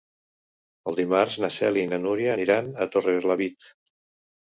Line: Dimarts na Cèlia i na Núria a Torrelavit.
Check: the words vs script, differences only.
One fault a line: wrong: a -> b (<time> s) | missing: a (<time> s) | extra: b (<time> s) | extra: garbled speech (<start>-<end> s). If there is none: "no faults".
extra: aniran (2.3 s)